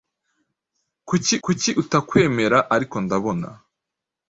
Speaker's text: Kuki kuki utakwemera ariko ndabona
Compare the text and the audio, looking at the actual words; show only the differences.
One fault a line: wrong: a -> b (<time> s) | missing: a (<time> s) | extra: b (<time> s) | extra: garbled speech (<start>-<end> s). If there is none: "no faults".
no faults